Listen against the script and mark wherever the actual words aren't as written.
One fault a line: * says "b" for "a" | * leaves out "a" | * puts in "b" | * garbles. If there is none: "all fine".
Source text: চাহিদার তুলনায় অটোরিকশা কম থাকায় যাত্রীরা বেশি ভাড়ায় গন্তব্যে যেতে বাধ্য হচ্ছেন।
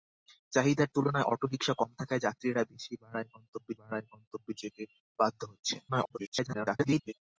* puts in "ভাড়ায় গন্তব্যে"
* garbles